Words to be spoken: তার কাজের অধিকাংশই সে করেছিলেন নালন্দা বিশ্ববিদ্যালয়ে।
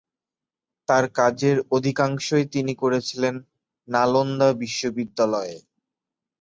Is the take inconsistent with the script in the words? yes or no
yes